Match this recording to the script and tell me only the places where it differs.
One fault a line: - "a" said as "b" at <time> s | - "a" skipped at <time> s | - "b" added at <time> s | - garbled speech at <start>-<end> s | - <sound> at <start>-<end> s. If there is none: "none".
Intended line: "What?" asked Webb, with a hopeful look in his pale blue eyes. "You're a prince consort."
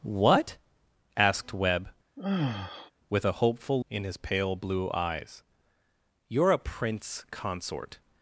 - sigh at 2.2-2.9 s
- "look" skipped at 3.8 s